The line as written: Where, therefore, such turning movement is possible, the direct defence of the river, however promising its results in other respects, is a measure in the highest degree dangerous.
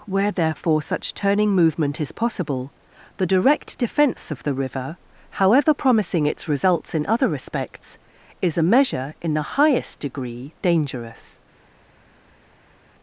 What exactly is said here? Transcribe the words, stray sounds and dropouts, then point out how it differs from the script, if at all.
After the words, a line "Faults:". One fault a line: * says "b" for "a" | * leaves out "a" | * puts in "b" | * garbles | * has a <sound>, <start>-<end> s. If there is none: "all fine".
Where, therefore, such turning movement is possible, the direct defence of the river, however promising its results in other respects, is a measure in the highest degree dangerous.
Faults:
all fine